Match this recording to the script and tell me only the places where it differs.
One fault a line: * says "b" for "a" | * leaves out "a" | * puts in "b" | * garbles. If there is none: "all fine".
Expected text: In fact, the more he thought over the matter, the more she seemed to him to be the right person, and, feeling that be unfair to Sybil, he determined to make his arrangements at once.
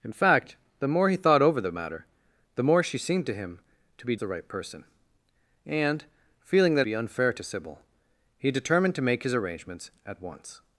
all fine